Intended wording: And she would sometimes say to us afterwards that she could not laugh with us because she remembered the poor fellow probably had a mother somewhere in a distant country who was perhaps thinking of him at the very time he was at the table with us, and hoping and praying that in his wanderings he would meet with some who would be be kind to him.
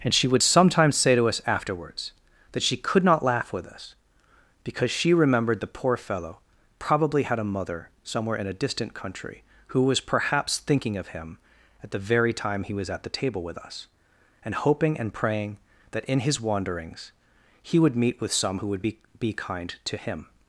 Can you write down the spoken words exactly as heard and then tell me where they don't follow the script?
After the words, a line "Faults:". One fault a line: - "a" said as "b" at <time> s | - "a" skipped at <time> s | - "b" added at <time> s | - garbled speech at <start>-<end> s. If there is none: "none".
And she would sometimes say to us afterwards that she could not laugh with us because she remembered the poor fellow probably had a mother somewhere in a distant country who was perhaps thinking of him at the very time he was at the table with us, and hoping and praying that in his wanderings he would meet with some who would be be kind to him.
Faults:
none